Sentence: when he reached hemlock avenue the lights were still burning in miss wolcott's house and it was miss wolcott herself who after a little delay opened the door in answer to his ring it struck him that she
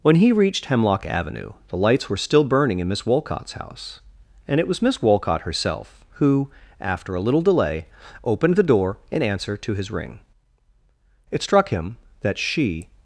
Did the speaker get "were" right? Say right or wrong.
right